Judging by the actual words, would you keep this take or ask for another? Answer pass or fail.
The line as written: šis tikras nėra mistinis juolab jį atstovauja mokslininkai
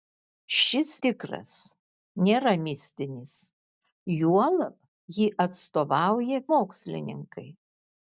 pass